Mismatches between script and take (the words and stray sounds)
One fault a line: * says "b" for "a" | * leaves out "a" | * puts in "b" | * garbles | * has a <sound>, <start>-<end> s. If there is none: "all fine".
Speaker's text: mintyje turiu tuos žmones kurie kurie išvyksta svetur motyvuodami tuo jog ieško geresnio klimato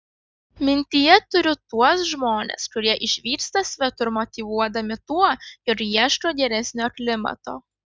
* leaves out "kurie"